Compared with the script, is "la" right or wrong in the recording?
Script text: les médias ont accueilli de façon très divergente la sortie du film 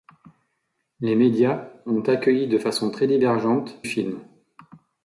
wrong